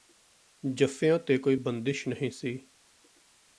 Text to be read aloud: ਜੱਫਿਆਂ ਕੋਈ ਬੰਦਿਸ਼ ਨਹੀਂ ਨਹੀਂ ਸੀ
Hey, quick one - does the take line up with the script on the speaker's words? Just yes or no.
no